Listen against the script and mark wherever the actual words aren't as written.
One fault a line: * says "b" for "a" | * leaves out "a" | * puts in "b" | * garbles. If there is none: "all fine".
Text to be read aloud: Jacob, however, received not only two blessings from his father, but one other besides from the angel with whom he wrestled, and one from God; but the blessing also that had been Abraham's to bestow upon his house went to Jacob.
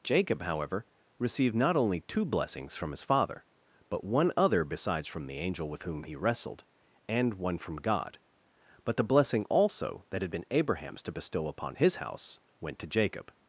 all fine